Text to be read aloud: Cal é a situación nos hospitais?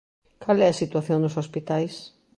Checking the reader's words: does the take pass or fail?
pass